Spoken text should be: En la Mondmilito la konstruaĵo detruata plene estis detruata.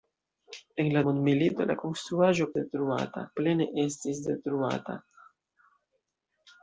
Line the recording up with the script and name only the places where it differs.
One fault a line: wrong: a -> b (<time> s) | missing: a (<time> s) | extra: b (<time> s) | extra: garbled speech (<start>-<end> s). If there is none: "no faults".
no faults